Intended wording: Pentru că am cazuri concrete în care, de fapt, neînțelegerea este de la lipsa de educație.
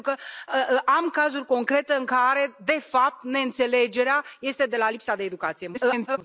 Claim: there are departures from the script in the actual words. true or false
true